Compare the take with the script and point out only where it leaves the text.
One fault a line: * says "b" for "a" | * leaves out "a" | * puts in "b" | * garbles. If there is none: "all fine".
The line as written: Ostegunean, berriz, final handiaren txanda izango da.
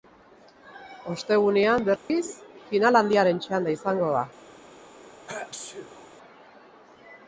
all fine